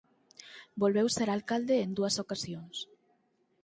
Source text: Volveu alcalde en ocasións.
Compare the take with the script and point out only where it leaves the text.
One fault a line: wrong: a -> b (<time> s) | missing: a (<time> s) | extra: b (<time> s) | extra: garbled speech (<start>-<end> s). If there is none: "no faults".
extra: ser (1.2 s)
extra: dúas (2.0 s)